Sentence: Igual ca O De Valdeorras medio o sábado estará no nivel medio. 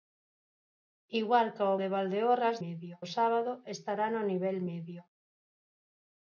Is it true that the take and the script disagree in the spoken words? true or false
false